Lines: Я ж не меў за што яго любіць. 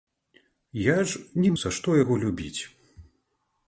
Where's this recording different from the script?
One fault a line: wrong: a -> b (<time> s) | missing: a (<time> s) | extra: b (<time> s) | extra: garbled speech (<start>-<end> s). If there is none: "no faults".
missing: меў (1.5 s)